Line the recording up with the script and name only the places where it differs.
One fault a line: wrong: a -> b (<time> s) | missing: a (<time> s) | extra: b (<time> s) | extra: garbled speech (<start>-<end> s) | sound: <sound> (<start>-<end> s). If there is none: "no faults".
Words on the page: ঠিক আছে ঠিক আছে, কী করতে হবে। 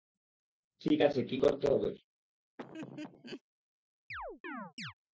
missing: ঠিক আছে (1.2 s)
sound: laugh (2.6-3.4 s)
sound: chirp (4.1-4.9 s)